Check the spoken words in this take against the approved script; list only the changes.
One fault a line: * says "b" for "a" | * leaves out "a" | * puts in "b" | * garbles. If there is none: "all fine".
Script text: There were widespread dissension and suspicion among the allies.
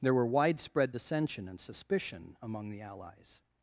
all fine